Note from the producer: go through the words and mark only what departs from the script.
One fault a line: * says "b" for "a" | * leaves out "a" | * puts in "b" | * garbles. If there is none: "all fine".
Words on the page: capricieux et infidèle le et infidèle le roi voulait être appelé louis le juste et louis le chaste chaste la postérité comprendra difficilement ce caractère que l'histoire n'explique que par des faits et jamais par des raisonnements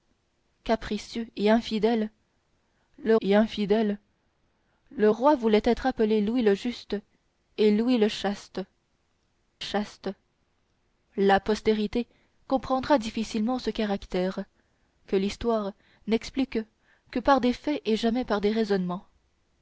all fine